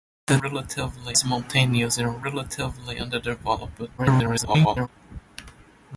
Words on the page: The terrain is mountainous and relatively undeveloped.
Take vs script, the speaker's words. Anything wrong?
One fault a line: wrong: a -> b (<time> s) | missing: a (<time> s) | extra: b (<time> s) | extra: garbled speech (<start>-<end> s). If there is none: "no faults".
wrong: terrain -> relatively (0.4 s)
extra: garbled speech (4.0-4.9 s)